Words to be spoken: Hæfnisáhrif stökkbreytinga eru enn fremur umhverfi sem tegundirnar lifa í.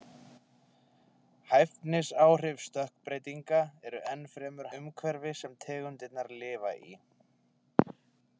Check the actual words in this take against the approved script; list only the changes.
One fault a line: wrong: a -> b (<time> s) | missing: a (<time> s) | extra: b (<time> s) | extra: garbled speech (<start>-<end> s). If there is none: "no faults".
no faults